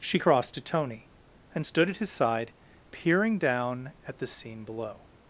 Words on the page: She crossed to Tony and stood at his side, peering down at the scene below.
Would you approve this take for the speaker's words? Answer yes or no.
yes